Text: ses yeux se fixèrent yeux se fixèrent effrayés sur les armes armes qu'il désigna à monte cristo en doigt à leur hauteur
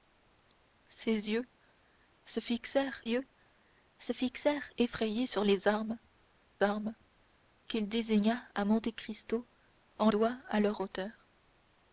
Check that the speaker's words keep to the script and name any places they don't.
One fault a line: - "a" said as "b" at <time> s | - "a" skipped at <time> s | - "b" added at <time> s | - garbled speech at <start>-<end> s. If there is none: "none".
none